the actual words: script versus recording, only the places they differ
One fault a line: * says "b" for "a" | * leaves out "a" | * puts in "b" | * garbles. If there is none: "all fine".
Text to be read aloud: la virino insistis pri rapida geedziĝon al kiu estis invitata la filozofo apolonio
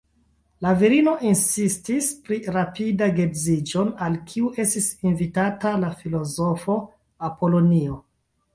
all fine